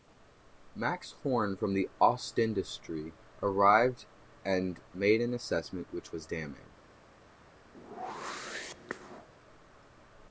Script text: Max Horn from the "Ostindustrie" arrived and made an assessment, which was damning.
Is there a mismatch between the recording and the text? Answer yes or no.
no